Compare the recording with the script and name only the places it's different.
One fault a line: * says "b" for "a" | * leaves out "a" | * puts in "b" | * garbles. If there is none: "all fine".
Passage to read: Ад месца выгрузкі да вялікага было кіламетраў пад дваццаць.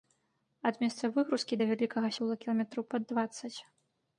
all fine